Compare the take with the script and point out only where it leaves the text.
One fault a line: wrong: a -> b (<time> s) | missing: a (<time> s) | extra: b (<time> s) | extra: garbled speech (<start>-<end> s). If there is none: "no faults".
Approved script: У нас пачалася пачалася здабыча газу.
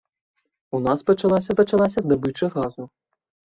no faults